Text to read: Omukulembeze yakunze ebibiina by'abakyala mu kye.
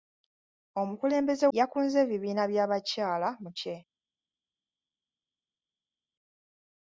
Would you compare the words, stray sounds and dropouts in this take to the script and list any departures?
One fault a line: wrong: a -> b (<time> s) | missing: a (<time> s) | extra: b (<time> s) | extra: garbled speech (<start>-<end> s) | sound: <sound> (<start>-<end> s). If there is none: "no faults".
no faults